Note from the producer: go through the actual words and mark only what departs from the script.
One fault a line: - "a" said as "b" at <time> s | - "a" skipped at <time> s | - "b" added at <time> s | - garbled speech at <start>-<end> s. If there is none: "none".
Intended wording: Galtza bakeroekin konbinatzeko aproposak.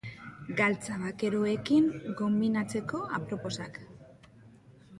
none